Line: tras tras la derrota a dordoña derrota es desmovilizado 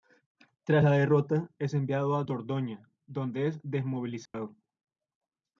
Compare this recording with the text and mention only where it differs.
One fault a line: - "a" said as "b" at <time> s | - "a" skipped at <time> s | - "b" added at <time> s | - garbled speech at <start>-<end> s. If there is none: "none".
- "tras" skipped at 0.8 s
- "es enviado" added at 1.6 s
- "derrota" said as "donde" at 3.1 s